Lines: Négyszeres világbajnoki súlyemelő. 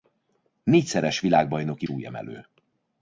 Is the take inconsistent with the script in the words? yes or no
no